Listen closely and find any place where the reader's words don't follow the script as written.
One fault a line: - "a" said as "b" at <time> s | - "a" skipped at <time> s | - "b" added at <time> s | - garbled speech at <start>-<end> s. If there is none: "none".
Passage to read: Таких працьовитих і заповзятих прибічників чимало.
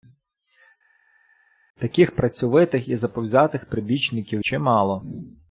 none